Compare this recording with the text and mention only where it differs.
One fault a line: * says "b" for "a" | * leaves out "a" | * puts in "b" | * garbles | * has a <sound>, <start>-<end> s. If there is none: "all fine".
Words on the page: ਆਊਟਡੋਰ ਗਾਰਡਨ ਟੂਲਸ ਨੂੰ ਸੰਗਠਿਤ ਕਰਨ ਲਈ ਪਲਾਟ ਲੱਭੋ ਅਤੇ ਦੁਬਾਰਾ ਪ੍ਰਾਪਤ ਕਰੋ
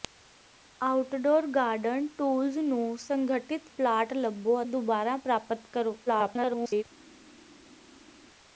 * leaves out "ਕਰਨ ਲਈ"
* leaves out "ਅਤੇ"
* garbles